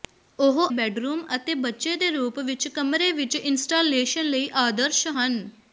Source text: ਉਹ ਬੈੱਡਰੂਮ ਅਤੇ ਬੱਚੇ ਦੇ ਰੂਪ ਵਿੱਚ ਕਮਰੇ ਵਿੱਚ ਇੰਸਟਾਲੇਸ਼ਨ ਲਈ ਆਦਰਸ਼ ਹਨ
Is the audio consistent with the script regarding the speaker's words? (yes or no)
yes